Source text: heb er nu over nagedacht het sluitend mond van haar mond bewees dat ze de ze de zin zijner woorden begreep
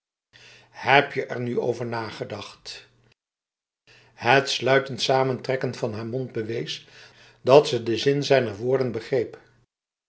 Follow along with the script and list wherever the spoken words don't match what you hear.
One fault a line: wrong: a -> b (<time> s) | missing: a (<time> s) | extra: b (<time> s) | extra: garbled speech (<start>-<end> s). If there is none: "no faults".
extra: je (1.1 s)
wrong: mond -> samentrekken (5.0 s)
missing: ze de (8.0 s)